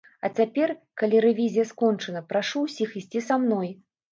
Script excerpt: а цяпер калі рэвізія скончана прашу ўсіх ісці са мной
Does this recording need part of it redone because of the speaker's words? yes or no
no